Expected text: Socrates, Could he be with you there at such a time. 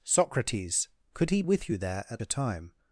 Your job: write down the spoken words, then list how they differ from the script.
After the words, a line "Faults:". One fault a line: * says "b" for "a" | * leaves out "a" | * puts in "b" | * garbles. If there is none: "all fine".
Socrates, Could he with you there at a time.
Faults:
* leaves out "be"
* leaves out "such"